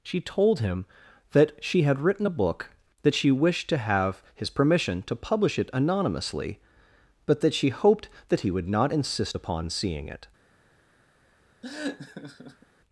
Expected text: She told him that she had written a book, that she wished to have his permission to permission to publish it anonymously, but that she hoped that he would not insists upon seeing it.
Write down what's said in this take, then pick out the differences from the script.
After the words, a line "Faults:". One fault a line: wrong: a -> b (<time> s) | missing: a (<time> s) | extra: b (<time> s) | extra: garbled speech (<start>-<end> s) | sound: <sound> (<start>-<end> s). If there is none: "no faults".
She told him that she had written a book, that she wished to have his permission to publish it anonymously, but that she hoped that he would not insist upon seeing it.
Faults:
missing: permission to (5.2 s)
wrong: insists -> insist (8.9 s)
sound: laugh (11.6-12.7 s)